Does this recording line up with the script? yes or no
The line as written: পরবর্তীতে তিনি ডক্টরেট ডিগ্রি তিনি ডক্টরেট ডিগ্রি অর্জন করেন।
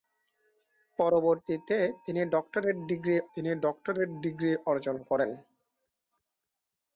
yes